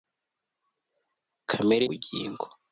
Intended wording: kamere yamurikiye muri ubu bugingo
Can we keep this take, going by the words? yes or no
no